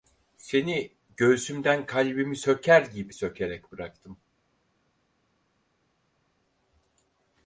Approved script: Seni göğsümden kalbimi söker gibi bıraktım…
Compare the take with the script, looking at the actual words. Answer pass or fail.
fail